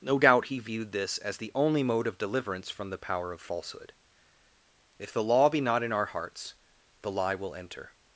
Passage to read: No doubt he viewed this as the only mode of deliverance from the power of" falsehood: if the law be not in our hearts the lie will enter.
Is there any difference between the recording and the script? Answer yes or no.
no